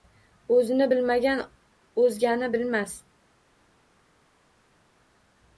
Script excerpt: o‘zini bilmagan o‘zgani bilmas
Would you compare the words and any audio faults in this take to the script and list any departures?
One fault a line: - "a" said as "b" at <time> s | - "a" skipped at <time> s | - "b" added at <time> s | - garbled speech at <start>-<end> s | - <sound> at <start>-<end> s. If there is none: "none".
none